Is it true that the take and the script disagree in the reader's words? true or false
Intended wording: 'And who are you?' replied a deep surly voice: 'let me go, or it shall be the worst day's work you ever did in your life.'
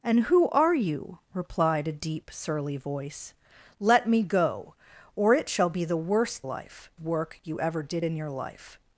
true